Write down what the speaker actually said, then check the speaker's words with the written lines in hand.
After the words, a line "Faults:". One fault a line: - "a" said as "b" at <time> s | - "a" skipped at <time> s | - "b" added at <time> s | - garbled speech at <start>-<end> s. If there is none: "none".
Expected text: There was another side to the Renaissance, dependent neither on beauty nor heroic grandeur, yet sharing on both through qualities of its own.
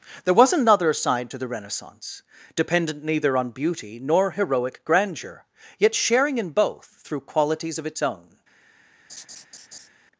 There was another side to the Renaissance, dependent neither on beauty nor heroic grandeur, yet sharing in both through qualities of its own.
Faults:
- "on" said as "in" at 6.4 s